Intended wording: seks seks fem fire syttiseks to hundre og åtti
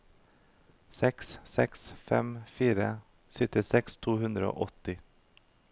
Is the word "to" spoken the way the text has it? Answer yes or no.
yes